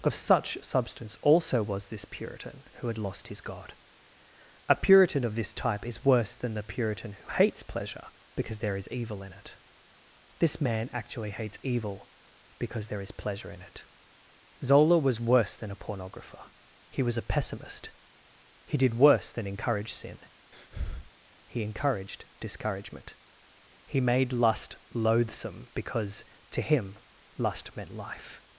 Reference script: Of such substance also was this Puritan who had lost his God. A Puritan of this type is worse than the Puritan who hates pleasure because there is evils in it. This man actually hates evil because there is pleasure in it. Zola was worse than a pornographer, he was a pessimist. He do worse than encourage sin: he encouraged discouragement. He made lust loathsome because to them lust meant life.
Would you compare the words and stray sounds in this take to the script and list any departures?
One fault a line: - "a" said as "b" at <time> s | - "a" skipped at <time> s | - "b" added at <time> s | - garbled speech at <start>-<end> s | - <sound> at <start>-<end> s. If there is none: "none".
- "evils" said as "evil" at 8.9 s
- "do" said as "did" at 18.8 s
- breath at 20.5-21.1 s
- "them" said as "him" at 26.6 s